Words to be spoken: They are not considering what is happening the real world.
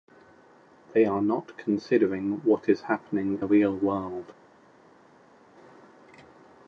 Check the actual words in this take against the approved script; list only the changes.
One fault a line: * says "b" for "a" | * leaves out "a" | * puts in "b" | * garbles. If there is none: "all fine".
all fine